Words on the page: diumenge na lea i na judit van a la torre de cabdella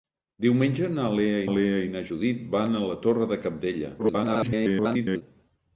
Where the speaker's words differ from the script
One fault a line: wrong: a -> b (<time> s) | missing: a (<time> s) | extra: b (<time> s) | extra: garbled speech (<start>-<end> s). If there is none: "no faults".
extra: lea (1.6 s)
extra: garbled speech (4.0-5.2 s)